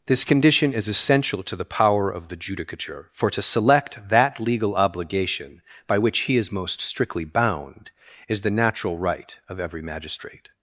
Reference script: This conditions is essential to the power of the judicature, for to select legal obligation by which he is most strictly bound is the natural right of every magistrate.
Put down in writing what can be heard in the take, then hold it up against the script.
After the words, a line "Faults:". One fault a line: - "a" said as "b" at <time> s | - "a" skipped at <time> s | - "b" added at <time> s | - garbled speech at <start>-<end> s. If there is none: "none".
This condition is essential to the power of the judicature, for to select that legal obligation by which he is most strictly bound is the natural right of every magistrate.
Faults:
- "conditions" said as "condition" at 0.2 s
- "that" added at 4.1 s